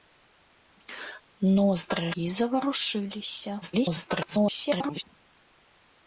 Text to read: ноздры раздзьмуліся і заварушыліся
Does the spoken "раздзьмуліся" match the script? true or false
false